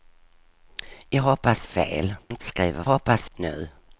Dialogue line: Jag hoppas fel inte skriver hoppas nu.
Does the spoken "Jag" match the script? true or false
true